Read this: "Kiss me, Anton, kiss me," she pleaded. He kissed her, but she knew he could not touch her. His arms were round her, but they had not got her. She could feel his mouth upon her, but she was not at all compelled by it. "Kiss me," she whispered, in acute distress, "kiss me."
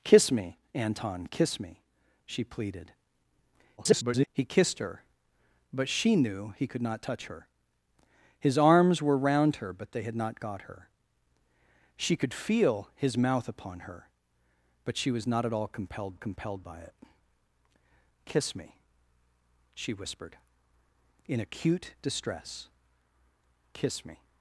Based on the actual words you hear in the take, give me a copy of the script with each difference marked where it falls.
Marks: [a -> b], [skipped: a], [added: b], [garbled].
"Kiss me, Anton, kiss me," she pleaded. [garbled] He kissed her, but she knew he could not touch her. His arms were round her, but they had not got her. She could feel his mouth upon her, but she was not at all compelled [added: compelled] by it. "Kiss me," she whispered, in acute distress, "kiss me."